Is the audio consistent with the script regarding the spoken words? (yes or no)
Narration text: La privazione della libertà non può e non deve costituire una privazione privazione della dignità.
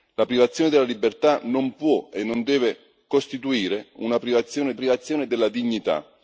yes